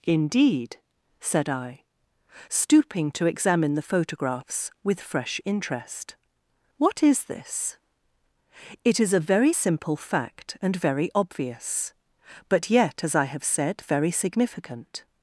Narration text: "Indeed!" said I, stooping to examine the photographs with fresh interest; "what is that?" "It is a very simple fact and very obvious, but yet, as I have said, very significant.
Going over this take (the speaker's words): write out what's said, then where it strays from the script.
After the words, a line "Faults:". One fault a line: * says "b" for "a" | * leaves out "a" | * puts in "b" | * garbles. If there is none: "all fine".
"Indeed!" said I, stooping to examine the photographs with fresh interest; "what is this?" "It is a very simple fact and very obvious, but yet, as I have said, very significant.
Faults:
* says "this" for "that"